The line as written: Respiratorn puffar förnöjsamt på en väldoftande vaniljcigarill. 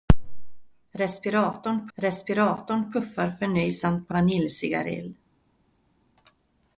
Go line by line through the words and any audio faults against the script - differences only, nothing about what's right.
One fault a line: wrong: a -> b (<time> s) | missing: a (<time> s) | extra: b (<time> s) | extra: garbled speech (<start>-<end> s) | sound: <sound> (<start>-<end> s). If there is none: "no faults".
extra: respiratorn (1.9 s)
missing: en väldoftande (4.1 s)